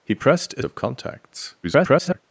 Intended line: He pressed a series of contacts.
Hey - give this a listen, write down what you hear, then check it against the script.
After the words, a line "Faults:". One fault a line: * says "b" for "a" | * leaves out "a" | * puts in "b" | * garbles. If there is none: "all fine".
He pressed a of contacts. [garbled]
Faults:
* leaves out "series"
* garbles